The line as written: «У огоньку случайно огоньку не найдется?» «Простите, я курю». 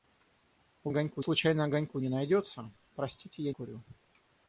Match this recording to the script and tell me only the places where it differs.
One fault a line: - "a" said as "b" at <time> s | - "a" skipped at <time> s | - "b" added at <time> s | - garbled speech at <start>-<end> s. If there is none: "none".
none